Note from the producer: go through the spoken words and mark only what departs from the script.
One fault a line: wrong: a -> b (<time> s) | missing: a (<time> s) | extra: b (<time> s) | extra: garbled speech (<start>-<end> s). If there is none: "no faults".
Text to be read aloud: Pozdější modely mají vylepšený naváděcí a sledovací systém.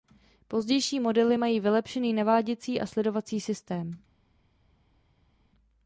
no faults